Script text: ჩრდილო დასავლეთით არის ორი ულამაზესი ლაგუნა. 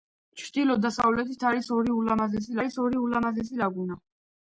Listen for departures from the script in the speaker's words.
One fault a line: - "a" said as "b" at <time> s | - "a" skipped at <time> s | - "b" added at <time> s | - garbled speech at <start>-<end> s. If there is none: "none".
- "არის ორი ულამაზესი" added at 2.6 s